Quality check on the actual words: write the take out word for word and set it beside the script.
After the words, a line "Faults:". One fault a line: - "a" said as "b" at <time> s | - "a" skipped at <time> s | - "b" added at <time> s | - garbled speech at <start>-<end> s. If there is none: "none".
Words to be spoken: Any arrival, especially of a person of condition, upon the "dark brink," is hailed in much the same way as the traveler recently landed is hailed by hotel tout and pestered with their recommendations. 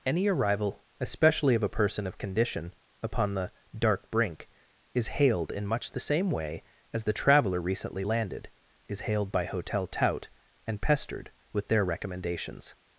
Any arrival, especially of a person of condition, upon the "dark brink," is hailed in much the same way as the traveler recently landed is hailed by hotel tout and pestered with their recommendations.
Faults:
none